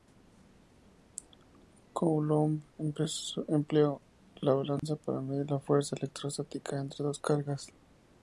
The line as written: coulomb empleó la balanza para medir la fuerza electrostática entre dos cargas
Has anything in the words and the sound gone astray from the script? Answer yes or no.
yes